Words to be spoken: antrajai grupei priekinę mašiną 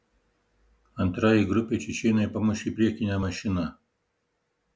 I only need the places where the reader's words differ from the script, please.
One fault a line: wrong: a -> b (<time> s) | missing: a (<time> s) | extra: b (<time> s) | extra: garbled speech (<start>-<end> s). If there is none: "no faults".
extra: čečėnai pamušė (1.9 s)